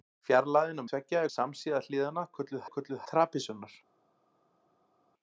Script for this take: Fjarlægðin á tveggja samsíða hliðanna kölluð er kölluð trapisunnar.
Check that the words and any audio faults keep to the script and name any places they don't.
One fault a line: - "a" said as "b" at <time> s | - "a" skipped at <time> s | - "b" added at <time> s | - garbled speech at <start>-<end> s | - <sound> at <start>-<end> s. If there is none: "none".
none